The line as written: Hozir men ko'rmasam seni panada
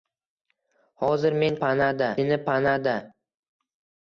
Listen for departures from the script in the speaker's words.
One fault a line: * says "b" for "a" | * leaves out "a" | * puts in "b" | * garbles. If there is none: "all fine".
* says "panada" for "ko'rmasam"